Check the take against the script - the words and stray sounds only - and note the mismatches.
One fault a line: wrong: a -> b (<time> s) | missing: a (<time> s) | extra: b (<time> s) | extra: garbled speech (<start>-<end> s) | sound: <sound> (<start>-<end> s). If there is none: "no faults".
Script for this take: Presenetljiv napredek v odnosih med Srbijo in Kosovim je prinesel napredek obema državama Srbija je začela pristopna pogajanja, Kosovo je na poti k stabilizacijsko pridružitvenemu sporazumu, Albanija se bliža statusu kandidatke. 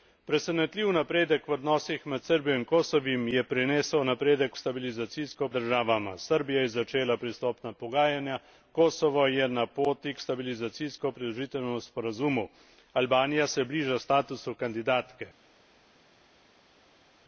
wrong: obema -> stabilizacijsko (4.6 s)